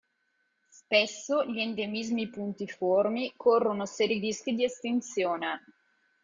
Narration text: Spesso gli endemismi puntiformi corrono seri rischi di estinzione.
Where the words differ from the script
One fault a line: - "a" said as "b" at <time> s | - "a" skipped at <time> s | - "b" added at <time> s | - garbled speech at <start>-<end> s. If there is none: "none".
none